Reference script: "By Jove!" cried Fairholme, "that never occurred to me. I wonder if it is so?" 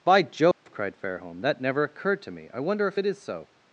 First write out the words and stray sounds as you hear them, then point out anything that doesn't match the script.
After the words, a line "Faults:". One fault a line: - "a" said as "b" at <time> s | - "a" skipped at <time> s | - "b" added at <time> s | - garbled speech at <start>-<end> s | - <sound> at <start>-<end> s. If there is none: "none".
"By Jove!" cried Fairholme, "that never occurred to me. I wonder if it is so?"
Faults:
- dropout at 0.5-0.7 s